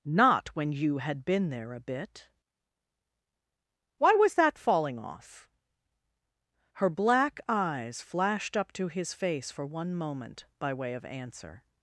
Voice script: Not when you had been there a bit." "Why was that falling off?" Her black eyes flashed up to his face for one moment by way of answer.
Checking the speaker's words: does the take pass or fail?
pass